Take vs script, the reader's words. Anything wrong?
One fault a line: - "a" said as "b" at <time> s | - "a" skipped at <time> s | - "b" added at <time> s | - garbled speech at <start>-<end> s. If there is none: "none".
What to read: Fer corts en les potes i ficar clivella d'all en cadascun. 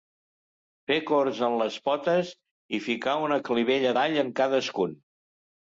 - "una" added at 3.3 s